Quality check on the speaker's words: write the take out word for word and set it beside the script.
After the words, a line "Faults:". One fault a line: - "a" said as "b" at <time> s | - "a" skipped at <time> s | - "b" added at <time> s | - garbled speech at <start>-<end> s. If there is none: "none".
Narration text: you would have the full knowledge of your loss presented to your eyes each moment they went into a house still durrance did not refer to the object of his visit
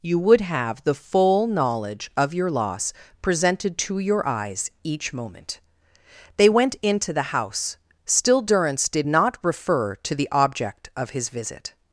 you would have the full knowledge of your loss presented to your eyes each moment they went into the house still durrance did not refer to the object of his visit
Faults:
- "a" said as "the" at 7.1 s